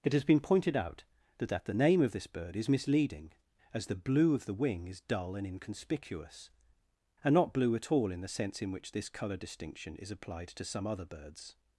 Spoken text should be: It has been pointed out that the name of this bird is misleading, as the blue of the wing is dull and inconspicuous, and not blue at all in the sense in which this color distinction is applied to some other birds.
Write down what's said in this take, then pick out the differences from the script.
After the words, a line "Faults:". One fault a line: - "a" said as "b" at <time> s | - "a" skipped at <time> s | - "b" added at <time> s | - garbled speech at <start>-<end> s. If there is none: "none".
It has been pointed out that that the name of this bird is misleading, as the blue of the wing is dull and inconspicuous, and not blue at all in the sense in which this color distinction is applied to some other birds.
Faults:
- "that" added at 1.5 s